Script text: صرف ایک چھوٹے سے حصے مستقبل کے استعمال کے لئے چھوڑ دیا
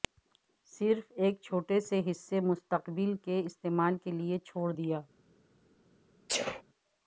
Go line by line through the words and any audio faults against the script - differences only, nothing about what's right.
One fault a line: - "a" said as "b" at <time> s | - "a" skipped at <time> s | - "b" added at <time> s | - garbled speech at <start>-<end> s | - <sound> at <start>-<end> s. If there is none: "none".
- sneeze at 6.3-6.6 s